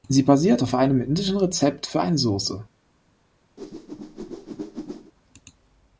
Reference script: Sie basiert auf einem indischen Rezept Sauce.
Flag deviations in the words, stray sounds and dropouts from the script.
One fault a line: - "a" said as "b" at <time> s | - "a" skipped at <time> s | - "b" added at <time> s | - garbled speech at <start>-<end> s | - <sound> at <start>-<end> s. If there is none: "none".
- "für eine" added at 1.9 s
- whoosh at 3.6-5.1 s